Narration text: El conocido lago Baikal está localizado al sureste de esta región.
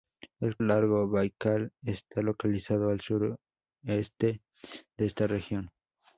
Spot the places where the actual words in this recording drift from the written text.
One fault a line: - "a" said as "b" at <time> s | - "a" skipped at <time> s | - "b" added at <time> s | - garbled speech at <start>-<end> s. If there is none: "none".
- "conocido" skipped at 0.6 s